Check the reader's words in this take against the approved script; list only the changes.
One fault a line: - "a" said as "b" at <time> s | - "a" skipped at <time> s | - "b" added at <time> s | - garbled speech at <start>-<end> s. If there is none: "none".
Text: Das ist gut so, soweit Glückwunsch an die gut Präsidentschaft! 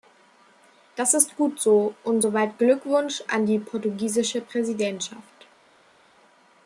- "und" added at 2.0 s
- "gut" said as "portugiesische" at 3.6 s